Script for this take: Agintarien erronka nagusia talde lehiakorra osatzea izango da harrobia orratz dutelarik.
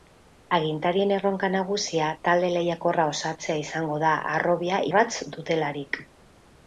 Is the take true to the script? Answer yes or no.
yes